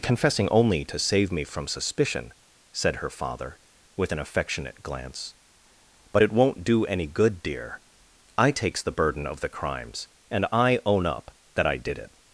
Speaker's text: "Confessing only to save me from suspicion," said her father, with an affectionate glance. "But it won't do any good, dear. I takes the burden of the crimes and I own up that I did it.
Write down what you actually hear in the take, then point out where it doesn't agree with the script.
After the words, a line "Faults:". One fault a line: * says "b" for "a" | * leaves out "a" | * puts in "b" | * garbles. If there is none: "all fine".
"Confessing only to save me from suspicion," said her father, with an affectionate glance. "But it won't do any good, dear. I takes the burden of the crimes and I own up that I did it.
Faults:
all fine